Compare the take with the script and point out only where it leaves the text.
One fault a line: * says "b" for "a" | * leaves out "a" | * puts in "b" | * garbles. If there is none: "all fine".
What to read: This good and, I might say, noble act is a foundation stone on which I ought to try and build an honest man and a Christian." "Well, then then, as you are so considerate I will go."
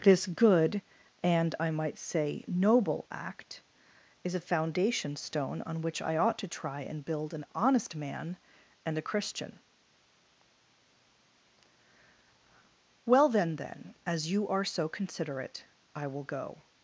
all fine